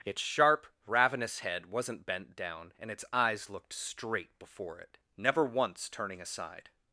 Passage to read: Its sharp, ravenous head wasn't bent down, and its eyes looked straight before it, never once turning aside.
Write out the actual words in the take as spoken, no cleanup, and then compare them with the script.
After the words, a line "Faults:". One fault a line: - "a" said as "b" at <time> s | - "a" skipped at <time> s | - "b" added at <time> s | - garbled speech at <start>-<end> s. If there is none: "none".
Its sharp, ravenous head wasn't bent down, and its eyes looked straight before it, never once turning aside.
Faults:
none